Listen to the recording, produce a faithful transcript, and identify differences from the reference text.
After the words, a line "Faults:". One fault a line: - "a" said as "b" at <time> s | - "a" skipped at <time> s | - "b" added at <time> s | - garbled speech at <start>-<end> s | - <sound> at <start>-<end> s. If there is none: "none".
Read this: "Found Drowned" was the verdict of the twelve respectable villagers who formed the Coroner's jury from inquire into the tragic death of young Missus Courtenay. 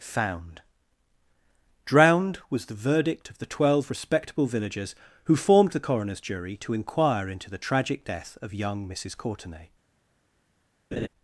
"Found Drowned" was the verdict of the twelve respectable villagers who formed the Coroner's jury to inquire into the tragic death of young Missus Courtenay.
Faults:
- "from" said as "to" at 6.6 s
- laugh at 10.9-11.1 s